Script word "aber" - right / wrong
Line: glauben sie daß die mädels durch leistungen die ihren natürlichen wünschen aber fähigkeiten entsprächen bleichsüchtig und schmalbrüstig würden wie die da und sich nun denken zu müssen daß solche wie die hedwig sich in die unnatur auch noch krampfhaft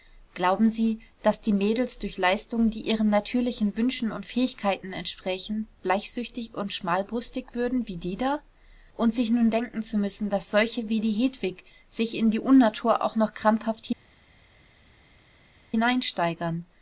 wrong